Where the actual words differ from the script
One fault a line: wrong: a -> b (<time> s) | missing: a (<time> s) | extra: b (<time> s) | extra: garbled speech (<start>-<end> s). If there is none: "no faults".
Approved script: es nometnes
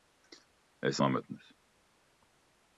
no faults